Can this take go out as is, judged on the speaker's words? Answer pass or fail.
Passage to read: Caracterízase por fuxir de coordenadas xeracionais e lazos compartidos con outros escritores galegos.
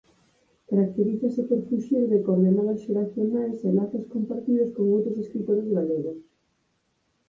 pass